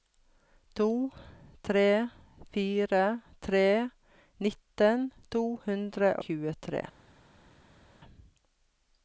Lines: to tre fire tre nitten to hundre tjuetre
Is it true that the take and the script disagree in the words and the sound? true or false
false